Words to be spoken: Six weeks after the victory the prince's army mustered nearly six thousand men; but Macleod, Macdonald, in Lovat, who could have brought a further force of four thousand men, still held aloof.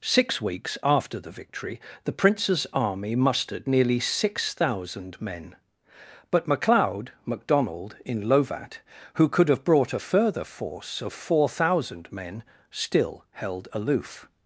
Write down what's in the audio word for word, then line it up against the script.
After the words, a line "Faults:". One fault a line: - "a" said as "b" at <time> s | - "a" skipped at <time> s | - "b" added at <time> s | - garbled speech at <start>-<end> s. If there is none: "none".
Six weeks after the victory the prince's army mustered nearly six thousand men; but Macleod, Macdonald, in Lovat, who could have brought a further force of four thousand men, still held aloof.
Faults:
none